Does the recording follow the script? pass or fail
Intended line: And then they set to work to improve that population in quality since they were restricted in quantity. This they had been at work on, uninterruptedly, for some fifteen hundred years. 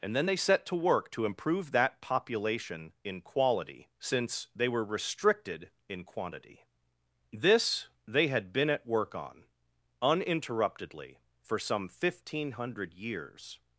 pass